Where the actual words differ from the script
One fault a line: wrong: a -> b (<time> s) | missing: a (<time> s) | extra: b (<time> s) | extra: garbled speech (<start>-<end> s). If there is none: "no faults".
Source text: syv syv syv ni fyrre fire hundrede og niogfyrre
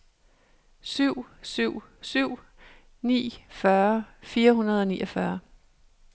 no faults